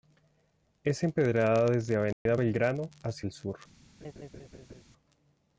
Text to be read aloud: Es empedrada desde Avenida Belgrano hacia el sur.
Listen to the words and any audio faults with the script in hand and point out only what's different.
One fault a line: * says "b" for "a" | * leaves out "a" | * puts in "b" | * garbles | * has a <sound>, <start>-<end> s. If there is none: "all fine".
* has a dropout, 2.1-2.3 s
* has a laugh, 4.0-4.8 s